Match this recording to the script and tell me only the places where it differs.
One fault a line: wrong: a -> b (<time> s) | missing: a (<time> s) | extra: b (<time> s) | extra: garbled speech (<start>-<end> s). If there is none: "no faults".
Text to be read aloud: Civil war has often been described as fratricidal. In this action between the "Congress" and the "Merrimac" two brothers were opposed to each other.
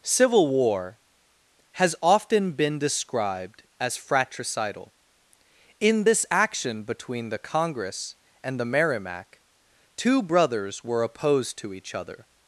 no faults